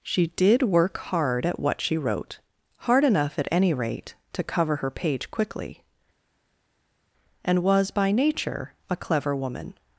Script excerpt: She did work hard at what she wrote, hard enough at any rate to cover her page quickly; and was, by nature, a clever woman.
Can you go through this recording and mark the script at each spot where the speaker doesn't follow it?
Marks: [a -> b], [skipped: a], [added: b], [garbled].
She did work hard at what she wrote, hard enough at any rate to cover her page quickly; and was, by nature, a clever woman.